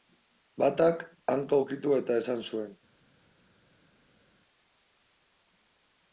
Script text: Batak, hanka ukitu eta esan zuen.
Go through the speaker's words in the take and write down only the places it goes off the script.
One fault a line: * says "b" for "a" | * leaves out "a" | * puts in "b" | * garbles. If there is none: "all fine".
all fine